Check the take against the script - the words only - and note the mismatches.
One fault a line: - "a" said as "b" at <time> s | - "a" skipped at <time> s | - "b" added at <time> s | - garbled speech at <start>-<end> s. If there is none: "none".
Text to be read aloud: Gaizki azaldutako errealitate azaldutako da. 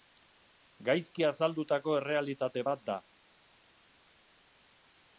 - "azaldutako" said as "bat" at 2.7 s